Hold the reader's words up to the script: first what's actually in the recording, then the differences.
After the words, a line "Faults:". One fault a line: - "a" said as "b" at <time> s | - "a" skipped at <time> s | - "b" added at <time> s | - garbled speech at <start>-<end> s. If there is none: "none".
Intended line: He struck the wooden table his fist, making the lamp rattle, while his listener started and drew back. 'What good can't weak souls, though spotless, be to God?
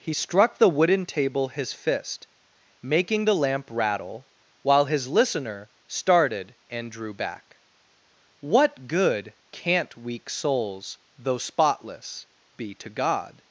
He struck the wooden table his fist, making the lamp rattle, while his listener started and drew back. 'What good can't weak souls, though spotless, be to God?
Faults:
none